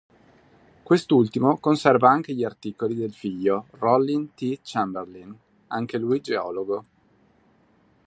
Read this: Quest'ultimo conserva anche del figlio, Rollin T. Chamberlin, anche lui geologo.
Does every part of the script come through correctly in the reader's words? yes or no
no